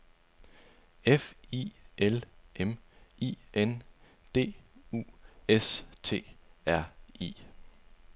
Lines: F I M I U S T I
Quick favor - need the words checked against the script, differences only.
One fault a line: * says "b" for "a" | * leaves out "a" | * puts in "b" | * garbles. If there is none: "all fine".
* puts in "L"
* puts in "N D"
* puts in "R"